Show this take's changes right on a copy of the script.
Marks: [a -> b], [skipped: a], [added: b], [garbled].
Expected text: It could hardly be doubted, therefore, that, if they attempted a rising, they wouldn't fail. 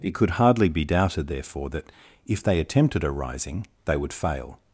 It could hardly be doubted, therefore, that, if they attempted a rising, they [wouldn't -> would] fail.